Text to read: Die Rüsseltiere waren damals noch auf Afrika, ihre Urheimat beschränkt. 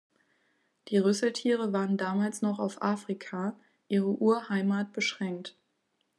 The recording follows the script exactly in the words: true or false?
true